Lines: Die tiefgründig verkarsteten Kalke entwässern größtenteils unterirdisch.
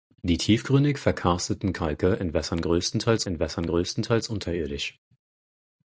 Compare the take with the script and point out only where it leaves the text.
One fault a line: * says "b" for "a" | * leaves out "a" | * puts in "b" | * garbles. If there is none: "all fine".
* puts in "entwässern größtenteils"